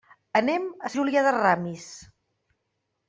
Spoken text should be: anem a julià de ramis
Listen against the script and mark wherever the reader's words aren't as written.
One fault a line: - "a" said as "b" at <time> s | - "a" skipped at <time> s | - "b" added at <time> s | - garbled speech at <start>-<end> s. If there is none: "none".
none